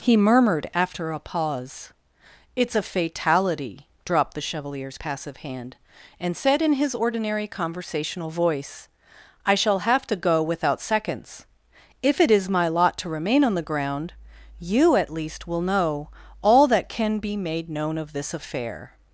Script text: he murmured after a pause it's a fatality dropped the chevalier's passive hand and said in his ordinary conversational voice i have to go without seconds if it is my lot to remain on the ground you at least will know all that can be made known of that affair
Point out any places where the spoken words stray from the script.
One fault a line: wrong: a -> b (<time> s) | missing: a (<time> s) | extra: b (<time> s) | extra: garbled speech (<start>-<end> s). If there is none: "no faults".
extra: shall (9.6 s)
wrong: that -> this (18.1 s)